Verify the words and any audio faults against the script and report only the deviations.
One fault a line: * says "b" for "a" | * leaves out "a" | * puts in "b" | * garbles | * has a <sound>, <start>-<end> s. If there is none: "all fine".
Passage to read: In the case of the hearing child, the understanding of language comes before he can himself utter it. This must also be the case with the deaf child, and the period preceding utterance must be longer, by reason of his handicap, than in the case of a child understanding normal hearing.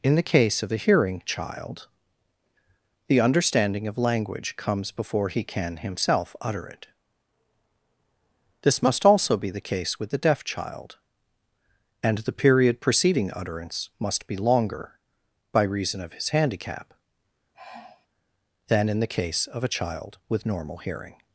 * has a sigh, 17.5-18.1 s
* says "with" for "understanding"